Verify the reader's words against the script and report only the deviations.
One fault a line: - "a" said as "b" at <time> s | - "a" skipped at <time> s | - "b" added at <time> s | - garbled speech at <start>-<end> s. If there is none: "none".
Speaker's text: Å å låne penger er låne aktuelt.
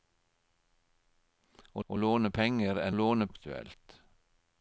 none